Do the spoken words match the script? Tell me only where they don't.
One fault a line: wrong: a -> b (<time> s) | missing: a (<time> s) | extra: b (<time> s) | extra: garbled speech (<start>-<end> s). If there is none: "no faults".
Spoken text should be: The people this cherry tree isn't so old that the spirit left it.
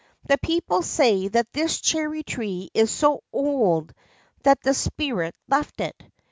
extra: say that (0.8 s)
wrong: isn't -> is (2.7 s)